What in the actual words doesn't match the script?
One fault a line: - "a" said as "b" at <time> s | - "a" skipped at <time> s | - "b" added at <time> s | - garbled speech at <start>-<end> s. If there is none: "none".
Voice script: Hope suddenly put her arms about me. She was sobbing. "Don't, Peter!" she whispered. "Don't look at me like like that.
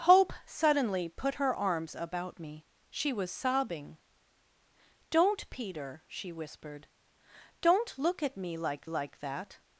none